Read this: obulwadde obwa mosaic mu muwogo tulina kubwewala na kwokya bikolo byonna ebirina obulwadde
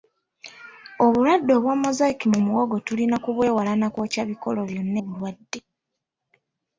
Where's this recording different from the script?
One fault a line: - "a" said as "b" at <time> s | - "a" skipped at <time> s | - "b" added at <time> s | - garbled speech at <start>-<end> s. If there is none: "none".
- "ebirina" skipped at 5.0 s